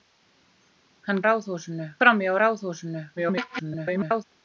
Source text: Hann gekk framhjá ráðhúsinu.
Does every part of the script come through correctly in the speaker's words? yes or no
no